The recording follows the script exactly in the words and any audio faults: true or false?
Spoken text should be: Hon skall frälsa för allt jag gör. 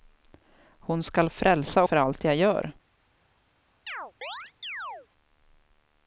false